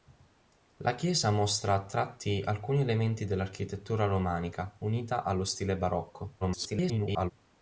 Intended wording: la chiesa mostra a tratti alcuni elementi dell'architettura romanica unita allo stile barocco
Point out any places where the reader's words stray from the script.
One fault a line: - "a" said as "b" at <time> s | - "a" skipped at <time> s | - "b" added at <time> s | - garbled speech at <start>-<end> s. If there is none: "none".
- garbled speech at 6.4-7.3 s